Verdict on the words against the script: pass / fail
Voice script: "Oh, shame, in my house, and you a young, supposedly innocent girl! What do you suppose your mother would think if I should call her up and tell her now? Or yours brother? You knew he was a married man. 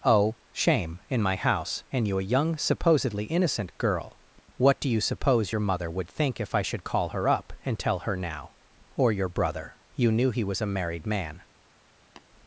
fail